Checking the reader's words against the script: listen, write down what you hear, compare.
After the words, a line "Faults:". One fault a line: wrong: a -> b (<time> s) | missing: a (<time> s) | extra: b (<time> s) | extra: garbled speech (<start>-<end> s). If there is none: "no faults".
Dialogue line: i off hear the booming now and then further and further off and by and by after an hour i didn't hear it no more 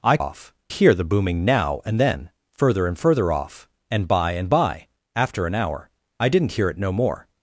i off hear the booming now and then further and further off and by and by after an hour i didn't hear it no more
Faults:
no faults